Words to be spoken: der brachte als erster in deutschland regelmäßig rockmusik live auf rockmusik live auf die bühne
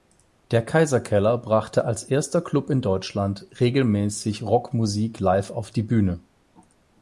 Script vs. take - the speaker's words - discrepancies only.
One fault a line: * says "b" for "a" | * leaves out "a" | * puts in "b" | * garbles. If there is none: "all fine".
* puts in "kaiserkeller"
* puts in "club"
* leaves out "rockmusik live auf"